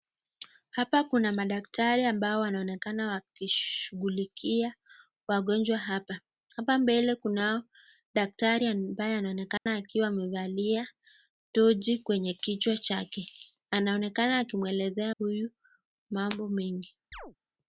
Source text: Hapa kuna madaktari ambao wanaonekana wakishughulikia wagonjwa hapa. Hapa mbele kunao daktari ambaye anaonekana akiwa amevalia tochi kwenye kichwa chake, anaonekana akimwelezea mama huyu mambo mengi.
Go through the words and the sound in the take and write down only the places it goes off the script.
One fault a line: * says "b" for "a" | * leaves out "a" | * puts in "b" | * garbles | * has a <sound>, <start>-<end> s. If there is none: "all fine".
* has a dropout, 9.6-9.7 s
* leaves out "mama"
* has a chirp, 17.1-17.4 s